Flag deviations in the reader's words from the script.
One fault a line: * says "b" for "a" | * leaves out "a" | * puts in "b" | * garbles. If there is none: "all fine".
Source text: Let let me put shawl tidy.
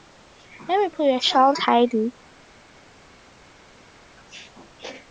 * leaves out "let"
* puts in "your"